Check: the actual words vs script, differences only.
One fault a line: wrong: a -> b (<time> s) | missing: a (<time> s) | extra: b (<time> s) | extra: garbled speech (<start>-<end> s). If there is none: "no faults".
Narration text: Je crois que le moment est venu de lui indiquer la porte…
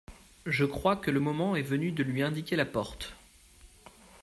no faults